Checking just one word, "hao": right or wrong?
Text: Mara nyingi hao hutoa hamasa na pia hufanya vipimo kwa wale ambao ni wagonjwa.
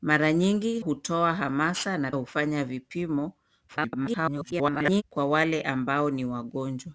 wrong